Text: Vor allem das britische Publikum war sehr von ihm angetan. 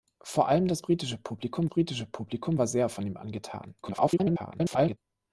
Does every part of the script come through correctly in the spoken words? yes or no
no